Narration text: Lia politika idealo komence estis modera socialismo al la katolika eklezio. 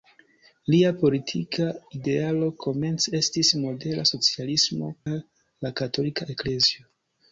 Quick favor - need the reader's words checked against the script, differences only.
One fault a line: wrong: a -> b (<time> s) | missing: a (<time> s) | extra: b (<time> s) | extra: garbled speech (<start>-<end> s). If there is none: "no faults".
no faults